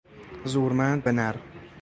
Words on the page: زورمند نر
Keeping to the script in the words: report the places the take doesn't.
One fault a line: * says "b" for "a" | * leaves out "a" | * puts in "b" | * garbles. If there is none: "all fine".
all fine